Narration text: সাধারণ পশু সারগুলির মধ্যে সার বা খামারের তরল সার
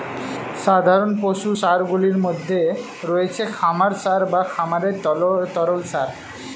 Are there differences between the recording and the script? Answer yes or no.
yes